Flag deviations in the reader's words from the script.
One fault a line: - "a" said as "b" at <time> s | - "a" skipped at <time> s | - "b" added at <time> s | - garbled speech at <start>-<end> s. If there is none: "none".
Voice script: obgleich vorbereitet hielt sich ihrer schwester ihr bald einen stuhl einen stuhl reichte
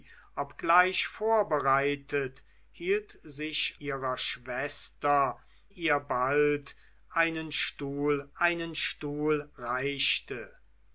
none